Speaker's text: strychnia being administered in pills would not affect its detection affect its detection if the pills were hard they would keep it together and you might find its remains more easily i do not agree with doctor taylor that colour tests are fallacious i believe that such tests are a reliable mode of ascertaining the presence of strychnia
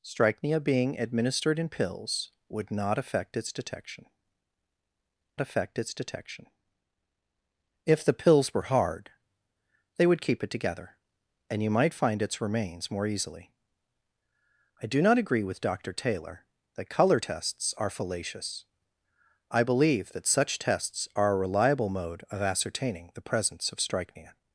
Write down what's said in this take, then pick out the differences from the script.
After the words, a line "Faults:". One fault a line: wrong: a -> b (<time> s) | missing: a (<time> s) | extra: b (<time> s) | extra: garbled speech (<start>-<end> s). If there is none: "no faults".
strychnia being administered in pills would not affect its detection affect its detection if the pills were hard they would keep it together and you might find its remains more easily i do not agree with doctor taylor that colour tests are fallacious i believe that such tests are a reliable mode of ascertaining the presence of strychnia
Faults:
no faults